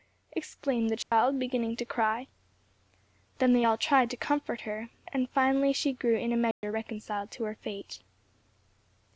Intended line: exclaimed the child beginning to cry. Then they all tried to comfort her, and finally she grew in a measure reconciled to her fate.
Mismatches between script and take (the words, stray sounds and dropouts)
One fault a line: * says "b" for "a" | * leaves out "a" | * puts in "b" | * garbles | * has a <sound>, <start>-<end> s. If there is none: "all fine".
* has a dropout, 1.0-1.1 s
* has a dropout, 6.5-6.6 s